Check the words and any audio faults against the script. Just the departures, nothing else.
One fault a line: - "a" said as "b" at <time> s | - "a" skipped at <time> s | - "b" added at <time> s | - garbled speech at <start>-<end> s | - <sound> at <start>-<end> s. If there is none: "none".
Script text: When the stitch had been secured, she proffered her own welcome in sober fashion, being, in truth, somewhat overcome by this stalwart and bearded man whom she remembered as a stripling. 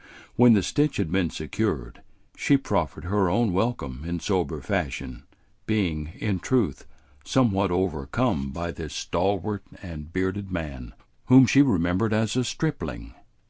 none